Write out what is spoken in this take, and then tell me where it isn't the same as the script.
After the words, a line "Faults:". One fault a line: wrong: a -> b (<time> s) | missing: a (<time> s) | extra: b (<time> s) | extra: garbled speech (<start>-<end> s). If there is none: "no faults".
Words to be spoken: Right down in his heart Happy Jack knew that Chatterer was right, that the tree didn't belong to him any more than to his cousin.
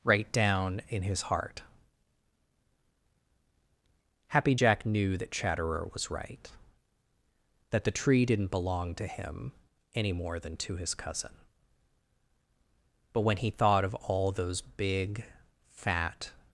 Right down in his heart Happy Jack knew that Chatterer was right, that the tree didn't belong to him any more than to his cousin. But when he thought of all those big, fat
Faults:
extra: But when he thought of all those big fat (13.1 s)